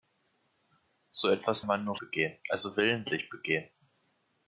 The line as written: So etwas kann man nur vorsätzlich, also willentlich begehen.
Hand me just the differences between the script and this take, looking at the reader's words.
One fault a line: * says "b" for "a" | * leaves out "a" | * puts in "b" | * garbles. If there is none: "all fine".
* leaves out "kann"
* says "begehen" for "vorsätzlich"